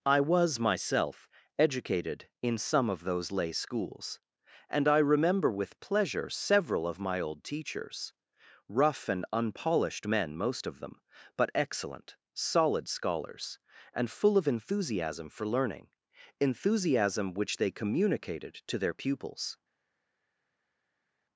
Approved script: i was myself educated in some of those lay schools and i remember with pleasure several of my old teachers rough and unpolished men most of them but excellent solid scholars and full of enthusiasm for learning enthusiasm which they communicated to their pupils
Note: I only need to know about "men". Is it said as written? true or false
true